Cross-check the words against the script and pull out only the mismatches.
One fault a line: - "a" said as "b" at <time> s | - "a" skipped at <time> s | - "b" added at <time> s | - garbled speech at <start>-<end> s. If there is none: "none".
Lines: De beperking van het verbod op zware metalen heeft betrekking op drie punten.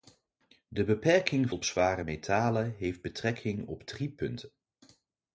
- "van het verbod" skipped at 1.5 s